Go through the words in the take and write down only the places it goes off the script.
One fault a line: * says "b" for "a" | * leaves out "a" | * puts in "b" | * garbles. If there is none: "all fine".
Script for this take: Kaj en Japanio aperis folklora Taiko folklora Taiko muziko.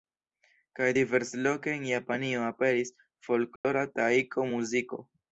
* puts in "diversloke"
* leaves out "folklora Taiko"